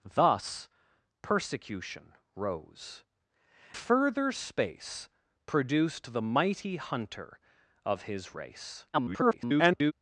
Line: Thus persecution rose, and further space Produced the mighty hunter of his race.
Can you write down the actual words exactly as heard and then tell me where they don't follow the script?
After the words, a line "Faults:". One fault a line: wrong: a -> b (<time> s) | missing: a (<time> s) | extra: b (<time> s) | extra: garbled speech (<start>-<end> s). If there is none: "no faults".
Thus persecution rose, further space Produced the mighty hunter of his race. [garbled]
Faults:
missing: and (3.0 s)
extra: garbled speech (8.9-9.9 s)